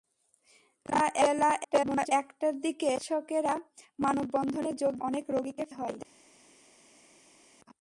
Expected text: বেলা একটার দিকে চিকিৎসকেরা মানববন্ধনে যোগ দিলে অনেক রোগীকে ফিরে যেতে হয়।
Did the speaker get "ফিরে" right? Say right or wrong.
wrong